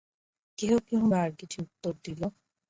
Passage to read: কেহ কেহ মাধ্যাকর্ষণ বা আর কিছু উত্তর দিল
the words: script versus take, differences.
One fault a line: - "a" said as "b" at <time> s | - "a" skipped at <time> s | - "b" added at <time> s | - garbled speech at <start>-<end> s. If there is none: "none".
- "মাধ্যাকর্ষণ" skipped at 1.0 s